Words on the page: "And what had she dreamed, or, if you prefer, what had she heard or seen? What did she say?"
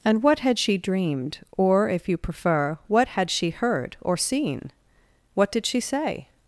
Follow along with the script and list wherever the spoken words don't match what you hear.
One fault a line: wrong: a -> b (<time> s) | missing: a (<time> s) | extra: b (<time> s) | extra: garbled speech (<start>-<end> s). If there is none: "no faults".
no faults